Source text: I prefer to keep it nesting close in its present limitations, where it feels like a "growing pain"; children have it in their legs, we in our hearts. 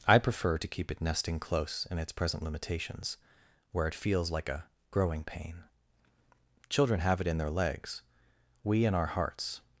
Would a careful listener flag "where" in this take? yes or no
no